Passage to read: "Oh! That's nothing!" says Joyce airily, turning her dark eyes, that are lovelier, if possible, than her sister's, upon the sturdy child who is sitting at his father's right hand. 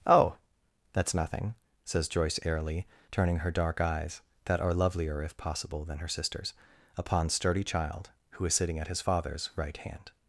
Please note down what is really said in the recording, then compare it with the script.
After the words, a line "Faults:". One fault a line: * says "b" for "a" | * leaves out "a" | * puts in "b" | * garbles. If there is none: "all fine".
"Oh! That's nothing!" says Joyce airily, turning her dark eyes, that are lovelier, if possible, than her sister's, upon sturdy child who is sitting at his father's right hand.
Faults:
* leaves out "the"